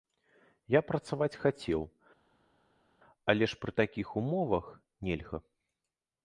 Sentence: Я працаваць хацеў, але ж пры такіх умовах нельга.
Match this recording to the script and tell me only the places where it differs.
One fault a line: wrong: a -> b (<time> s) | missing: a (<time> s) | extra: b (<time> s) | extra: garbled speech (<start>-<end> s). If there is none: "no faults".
no faults